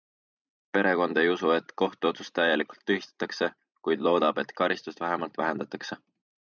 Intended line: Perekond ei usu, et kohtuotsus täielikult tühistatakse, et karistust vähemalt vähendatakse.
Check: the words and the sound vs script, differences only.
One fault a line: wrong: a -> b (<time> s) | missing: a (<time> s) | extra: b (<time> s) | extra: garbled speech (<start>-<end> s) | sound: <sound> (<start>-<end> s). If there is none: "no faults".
extra: kuid loodab (3.9 s)